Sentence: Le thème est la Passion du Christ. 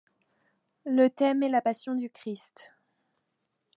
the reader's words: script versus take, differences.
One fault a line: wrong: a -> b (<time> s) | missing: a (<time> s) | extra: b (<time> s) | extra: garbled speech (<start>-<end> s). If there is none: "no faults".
no faults